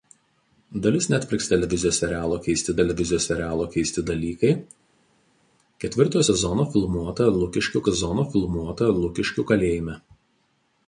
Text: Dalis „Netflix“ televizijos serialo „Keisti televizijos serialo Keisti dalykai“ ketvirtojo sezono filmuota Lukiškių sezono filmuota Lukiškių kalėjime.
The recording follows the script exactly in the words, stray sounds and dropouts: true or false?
true